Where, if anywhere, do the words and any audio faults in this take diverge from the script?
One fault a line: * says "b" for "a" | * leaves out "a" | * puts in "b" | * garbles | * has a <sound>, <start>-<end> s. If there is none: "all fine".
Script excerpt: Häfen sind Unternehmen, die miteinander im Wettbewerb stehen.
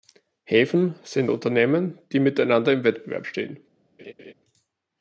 * has a laugh, 4.0-4.3 s